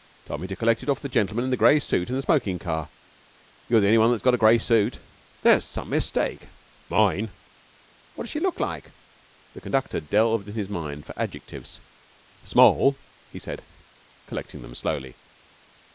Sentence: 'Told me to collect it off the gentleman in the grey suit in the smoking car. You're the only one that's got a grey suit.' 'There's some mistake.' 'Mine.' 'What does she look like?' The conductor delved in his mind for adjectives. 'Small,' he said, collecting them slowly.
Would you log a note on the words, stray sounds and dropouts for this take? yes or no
no